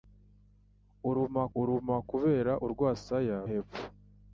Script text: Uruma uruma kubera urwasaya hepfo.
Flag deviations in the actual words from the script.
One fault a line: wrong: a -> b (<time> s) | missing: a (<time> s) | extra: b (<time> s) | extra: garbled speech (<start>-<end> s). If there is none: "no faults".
no faults